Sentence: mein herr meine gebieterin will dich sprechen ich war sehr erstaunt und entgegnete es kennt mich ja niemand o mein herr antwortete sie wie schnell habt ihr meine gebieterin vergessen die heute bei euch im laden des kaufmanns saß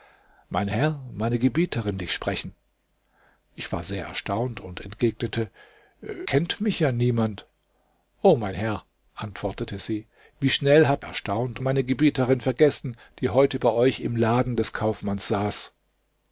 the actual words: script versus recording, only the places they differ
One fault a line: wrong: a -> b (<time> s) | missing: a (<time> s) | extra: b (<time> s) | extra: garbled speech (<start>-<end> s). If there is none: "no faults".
missing: will (2.0 s)
missing: es (5.5 s)
wrong: ihr -> erstaunt (11.1 s)